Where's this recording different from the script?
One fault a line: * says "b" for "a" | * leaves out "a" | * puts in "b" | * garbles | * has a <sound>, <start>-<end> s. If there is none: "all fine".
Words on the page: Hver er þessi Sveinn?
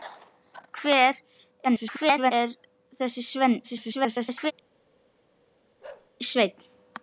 * garbles
* garbles
* has a bark, 5.8-6.1 s